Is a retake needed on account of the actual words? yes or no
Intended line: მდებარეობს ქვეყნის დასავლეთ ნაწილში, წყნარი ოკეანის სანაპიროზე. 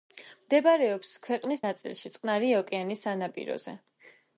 yes